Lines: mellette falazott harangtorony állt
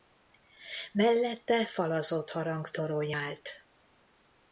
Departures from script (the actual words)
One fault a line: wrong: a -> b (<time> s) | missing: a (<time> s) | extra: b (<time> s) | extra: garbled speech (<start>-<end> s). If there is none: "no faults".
no faults